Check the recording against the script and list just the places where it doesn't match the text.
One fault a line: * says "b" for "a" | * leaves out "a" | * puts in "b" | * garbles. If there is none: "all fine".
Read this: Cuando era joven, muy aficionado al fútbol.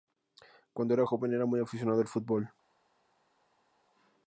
* puts in "era"